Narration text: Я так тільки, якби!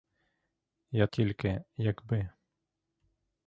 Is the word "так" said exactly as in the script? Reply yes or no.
no